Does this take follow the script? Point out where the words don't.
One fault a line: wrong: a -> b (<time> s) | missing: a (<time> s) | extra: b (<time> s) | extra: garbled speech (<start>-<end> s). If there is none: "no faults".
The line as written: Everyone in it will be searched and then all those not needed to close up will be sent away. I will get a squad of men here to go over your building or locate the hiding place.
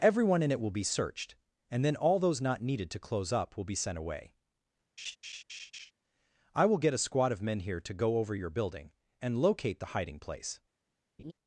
wrong: or -> and (9.2 s)